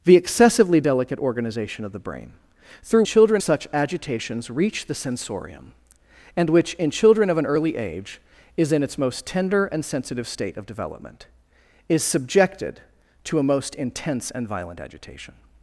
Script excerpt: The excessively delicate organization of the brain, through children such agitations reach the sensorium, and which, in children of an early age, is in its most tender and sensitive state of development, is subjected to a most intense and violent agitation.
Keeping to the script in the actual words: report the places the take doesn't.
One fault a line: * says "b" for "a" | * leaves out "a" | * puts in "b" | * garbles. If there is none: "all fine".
all fine